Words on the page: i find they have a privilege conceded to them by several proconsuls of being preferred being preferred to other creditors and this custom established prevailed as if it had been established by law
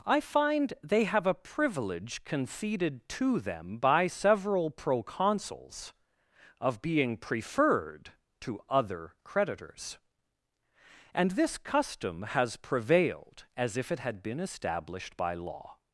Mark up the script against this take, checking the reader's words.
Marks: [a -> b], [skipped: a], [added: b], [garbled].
i find they have a privilege conceded to them by several proconsuls of being preferred [skipped: being preferred] to other creditors and this custom [established -> has] prevailed as if it had been established by law